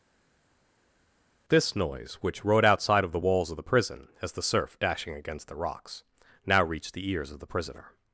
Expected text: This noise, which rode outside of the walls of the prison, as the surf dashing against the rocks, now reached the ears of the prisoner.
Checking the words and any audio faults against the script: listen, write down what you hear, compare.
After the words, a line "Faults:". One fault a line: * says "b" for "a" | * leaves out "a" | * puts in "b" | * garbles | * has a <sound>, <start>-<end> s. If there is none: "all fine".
This noise, which rode outside of the walls of the prison, as the surf dashing against the rocks, now reached the ears of the prisoner.
Faults:
all fine